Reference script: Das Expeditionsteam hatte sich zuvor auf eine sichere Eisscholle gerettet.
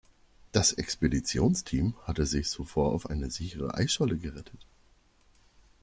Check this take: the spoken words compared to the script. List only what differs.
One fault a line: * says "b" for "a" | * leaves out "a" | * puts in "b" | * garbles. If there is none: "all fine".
all fine